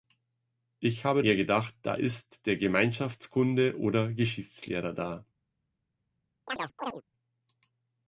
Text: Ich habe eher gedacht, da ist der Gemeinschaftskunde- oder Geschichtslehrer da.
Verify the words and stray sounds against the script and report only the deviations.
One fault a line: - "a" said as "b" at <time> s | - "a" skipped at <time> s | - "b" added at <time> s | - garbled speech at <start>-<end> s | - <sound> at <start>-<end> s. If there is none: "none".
- chirp at 6.5-7.0 s